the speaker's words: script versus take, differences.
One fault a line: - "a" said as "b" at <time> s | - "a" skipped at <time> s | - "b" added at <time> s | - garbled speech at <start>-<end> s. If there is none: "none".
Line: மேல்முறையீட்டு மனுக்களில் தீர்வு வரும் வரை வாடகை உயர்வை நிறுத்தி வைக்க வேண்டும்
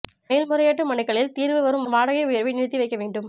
- "வரை" skipped at 1.9 s